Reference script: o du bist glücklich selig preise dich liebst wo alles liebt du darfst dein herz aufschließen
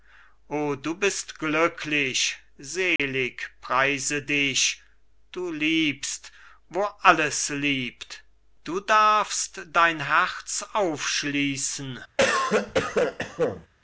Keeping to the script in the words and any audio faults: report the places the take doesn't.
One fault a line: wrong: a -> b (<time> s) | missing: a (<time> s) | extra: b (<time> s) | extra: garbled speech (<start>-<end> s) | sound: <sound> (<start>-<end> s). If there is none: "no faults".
sound: dropout (3.0-3.0 s)
extra: du (5.3 s)
sound: cough (12.2-13.7 s)